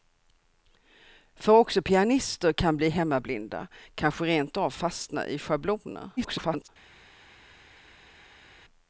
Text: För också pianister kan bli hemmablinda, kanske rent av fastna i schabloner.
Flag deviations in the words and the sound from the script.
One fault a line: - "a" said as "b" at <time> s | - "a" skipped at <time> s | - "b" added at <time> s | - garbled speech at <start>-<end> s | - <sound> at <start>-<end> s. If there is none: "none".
- garbled speech at 6.2-6.7 s